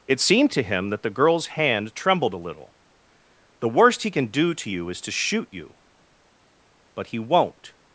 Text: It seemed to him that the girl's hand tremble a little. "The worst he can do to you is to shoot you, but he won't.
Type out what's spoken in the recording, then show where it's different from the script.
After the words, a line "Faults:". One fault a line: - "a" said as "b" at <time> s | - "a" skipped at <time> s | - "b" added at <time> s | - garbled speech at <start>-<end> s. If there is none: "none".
It seemed to him that the girl's hand trembled a little. "The worst he can do to you is to shoot you, but he won't.
Faults:
- "tremble" said as "trembled" at 1.9 s